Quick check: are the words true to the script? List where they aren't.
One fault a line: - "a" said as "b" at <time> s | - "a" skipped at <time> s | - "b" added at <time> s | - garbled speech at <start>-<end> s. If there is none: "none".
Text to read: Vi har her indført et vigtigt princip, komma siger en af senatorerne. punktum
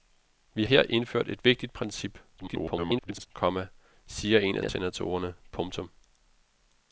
- "har" skipped at 0.7 s
- garbled speech at 2.4-3.3 s
- "af" added at 4.6 s